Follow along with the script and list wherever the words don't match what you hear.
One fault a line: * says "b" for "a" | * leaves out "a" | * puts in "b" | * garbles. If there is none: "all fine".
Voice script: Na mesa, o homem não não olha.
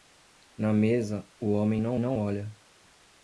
all fine